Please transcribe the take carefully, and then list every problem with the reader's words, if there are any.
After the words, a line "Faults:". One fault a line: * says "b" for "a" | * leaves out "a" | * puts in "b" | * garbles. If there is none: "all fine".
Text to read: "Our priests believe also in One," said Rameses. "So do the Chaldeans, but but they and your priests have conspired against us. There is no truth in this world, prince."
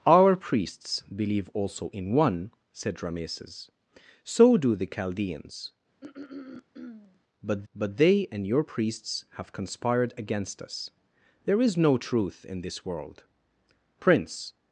"Our priests believe also in One," said Rameses. "So do the Chaldeans, but but they and your priests have conspired against us. There is no truth in this world, prince."
Faults:
all fine